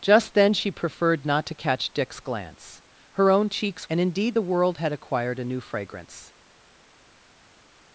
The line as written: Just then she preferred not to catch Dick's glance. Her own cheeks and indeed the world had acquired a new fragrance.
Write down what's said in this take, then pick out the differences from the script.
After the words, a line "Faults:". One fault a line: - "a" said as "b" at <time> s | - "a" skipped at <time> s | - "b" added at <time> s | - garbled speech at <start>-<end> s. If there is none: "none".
Just then she preferred not to catch Dick's glance. Her own cheeks and indeed the world had acquired a new fragrance.
Faults:
none